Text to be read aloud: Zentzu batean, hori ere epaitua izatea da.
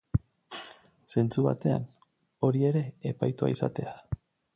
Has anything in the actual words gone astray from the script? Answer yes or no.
no